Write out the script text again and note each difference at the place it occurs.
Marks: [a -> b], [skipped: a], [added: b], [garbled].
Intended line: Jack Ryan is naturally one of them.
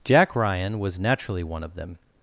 Jack Ryan [is -> was] naturally one of them.